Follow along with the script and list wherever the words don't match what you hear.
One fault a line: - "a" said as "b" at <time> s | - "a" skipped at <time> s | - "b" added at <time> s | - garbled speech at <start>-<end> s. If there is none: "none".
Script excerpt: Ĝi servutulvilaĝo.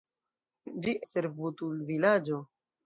none